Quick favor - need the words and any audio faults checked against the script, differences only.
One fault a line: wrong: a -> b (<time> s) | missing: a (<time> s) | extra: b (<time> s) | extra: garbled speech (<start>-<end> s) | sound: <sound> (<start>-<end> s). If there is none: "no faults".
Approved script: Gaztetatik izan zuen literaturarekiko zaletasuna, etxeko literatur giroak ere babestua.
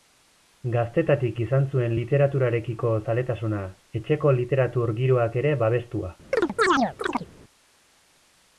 sound: chirp (6.3-7.3 s)